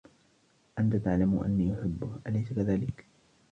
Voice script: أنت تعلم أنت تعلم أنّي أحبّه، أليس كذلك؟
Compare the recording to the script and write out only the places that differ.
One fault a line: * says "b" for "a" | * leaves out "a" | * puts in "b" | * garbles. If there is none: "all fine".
* leaves out "أنت تعلم"